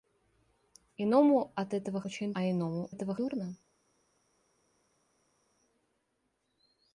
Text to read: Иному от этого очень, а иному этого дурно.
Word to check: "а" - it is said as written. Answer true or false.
true